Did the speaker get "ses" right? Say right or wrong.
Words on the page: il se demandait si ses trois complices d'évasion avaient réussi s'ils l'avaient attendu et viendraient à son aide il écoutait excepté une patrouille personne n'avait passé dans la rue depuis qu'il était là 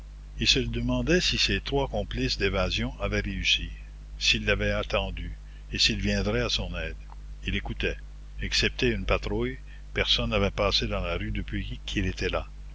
right